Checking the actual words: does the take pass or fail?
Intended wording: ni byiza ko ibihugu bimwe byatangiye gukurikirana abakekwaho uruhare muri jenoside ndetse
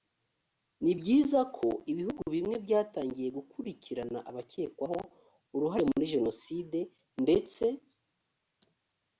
pass